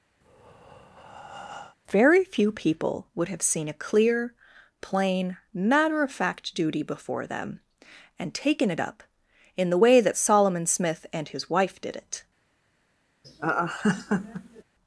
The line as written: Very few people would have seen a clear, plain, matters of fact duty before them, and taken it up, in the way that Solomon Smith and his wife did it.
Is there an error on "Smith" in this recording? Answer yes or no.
no